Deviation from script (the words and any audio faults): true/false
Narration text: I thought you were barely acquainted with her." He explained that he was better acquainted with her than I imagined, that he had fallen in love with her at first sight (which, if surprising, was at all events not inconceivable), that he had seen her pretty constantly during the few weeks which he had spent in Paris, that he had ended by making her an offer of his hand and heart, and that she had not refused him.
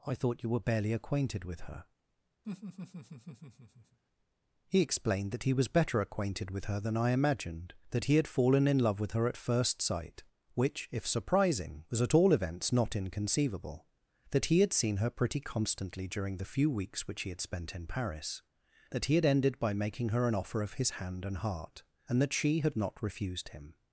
true